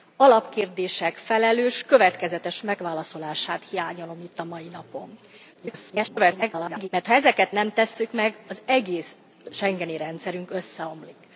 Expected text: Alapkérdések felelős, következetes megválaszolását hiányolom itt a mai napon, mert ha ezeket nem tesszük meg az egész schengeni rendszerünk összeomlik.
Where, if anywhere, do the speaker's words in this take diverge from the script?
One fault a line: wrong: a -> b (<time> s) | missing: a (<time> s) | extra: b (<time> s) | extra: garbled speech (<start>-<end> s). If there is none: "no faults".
extra: garbled speech (5.5-6.9 s)